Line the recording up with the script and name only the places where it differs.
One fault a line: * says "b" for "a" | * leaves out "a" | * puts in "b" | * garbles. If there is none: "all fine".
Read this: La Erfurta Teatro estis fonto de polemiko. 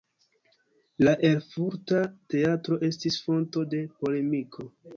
all fine